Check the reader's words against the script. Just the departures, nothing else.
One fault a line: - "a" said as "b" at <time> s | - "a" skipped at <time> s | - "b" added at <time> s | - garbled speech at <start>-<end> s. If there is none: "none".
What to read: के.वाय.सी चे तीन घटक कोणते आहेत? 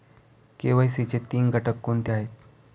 none